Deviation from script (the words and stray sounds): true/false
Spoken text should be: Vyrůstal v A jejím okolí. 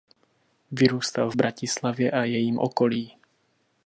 true